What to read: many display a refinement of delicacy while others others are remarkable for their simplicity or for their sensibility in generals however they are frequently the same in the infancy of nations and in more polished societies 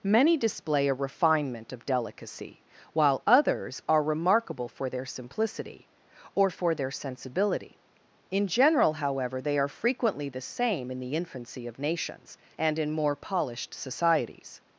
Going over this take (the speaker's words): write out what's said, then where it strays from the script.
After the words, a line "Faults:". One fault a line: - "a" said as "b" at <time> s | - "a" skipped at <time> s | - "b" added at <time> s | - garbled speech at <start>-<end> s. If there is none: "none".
many display a refinement of delicacy while others are remarkable for their simplicity or for their sensibility in general however they are frequently the same in the infancy of nations and in more polished societies
Faults:
- "others" skipped at 3.8 s
- "generals" said as "general" at 8.5 s